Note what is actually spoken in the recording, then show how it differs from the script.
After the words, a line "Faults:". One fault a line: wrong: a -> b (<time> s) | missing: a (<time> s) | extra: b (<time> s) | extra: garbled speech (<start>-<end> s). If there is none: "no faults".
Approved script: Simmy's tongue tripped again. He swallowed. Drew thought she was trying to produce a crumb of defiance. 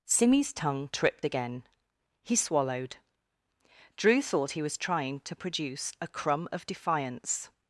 Simmy's tongue tripped again. He swallowed. Drew thought he was trying to produce a crumb of defiance.
Faults:
wrong: she -> he (4.5 s)